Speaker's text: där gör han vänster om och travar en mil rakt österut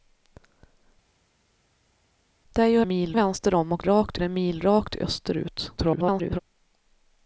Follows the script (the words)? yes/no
no